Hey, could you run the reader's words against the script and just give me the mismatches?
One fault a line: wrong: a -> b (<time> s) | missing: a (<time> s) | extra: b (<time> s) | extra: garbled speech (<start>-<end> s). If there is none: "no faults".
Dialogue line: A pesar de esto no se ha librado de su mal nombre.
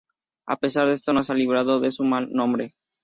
no faults